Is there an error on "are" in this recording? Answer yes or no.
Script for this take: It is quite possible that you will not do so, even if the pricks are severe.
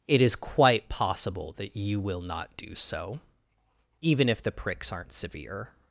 yes